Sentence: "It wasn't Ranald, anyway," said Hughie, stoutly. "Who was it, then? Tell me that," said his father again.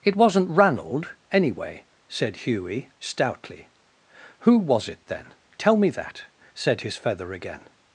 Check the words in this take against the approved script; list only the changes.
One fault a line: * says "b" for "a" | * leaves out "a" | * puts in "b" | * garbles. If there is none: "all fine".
* says "feather" for "father"